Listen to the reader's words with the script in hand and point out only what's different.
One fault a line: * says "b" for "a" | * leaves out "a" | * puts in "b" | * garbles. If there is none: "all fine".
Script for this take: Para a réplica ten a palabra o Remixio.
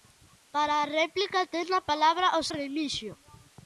all fine